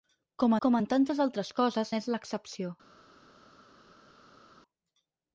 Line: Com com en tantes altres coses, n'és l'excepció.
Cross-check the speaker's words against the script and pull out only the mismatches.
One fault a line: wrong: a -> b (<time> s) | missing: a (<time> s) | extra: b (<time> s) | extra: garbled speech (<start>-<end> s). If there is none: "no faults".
no faults